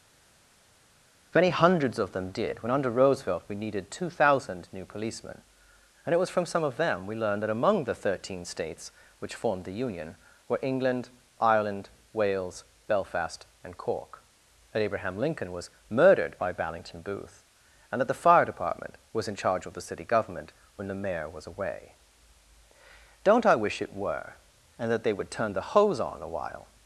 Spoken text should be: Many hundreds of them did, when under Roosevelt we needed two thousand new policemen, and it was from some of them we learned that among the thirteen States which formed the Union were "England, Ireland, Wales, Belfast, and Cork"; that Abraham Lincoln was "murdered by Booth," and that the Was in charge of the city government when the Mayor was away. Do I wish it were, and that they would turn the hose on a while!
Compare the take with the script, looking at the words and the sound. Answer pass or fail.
fail